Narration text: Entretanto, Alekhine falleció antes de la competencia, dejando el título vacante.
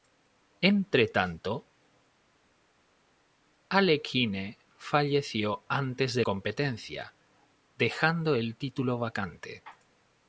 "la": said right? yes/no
no